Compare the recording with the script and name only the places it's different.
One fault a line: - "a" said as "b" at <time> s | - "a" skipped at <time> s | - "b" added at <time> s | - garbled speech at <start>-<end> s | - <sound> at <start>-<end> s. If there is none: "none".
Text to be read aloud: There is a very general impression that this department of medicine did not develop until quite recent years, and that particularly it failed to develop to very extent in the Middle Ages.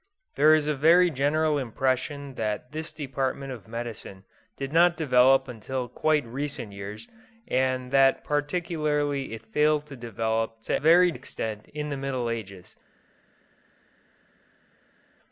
none